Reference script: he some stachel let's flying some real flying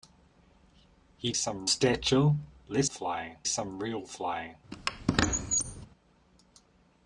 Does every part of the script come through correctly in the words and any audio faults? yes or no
no